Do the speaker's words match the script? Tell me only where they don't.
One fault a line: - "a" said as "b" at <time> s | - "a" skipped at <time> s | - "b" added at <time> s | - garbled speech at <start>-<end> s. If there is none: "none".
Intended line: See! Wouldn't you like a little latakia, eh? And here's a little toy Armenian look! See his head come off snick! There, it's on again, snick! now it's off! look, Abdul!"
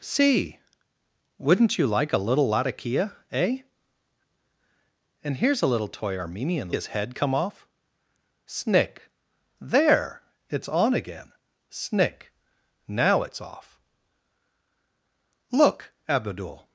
- "look See" skipped at 6.7 s